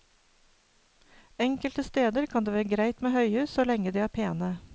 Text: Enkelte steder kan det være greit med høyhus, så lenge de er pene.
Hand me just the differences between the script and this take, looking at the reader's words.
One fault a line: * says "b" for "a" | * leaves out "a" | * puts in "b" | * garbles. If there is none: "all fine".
all fine